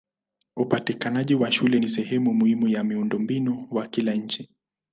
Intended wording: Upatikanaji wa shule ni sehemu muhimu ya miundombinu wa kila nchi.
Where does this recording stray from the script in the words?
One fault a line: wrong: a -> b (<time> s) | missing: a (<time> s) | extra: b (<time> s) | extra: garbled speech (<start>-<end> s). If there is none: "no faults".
no faults